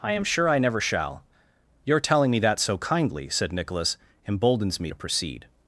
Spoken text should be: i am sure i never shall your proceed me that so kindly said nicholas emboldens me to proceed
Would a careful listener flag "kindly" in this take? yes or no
no